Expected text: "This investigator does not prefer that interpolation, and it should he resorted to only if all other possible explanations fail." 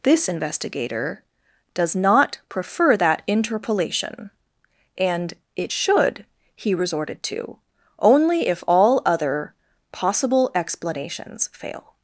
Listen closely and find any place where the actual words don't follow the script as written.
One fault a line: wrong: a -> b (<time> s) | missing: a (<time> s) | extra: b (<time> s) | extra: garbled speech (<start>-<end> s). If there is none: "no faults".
no faults